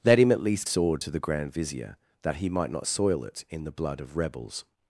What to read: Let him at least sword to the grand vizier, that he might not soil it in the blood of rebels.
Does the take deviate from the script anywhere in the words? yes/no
no